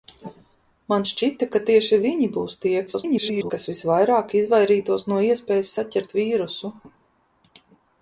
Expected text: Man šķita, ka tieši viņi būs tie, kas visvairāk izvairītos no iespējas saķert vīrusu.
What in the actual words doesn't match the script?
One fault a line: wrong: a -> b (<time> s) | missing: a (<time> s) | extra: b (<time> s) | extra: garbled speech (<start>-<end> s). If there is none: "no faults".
extra: garbled speech (2.9-3.5 s)